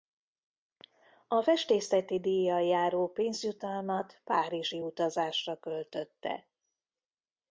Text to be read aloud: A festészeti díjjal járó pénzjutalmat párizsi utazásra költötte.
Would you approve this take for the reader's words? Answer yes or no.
yes